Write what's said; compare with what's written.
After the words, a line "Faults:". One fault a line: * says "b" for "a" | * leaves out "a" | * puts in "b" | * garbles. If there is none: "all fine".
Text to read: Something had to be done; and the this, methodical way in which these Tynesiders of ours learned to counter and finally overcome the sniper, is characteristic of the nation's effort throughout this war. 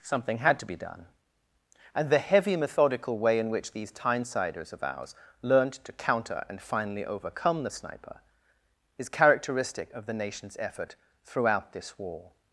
Something had to be done; and the heavy, methodical way in which these Tynesiders of ours learned to counter and finally overcome the sniper, is characteristic of the nation's effort throughout this war.
Faults:
* says "heavy" for "this"